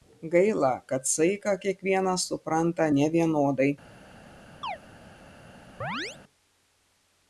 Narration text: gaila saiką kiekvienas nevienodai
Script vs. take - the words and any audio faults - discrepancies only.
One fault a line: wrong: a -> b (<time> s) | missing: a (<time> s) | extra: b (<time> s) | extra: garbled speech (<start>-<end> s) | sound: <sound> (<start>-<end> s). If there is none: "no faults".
extra: kad (0.9 s)
extra: supranta (2.3 s)
sound: chirp (4.6-4.8 s)
sound: chirp (5.8-6.2 s)